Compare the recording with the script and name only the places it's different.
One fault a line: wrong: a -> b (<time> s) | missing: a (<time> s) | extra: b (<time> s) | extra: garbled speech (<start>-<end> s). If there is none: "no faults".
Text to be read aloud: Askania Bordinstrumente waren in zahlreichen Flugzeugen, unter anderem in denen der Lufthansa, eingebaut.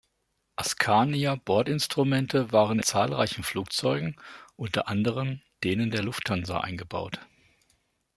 missing: in (2.8 s)
missing: in (5.4 s)